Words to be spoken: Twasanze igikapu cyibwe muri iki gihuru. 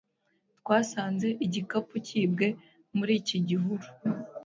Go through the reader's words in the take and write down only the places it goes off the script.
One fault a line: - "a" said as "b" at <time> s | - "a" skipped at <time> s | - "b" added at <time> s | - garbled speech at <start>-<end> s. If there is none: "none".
none